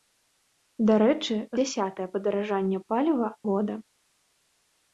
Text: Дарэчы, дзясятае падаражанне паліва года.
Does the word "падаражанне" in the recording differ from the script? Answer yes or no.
no